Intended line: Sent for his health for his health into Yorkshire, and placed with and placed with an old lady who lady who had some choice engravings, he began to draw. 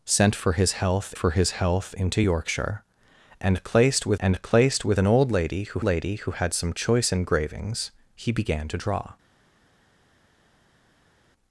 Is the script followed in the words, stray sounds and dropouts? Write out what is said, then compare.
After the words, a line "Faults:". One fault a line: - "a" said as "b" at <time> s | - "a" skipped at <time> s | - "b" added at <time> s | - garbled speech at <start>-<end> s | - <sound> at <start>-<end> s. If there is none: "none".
Sent for his health for his health into Yorkshire, and placed with and placed with an old lady who lady who had some choice engravings, he began to draw.
Faults:
none